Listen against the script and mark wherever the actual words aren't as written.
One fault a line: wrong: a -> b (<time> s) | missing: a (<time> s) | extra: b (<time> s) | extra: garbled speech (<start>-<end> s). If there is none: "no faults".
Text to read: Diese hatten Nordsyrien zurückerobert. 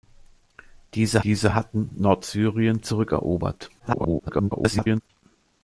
extra: diese (1.2 s)
extra: garbled speech (3.8-5.0 s)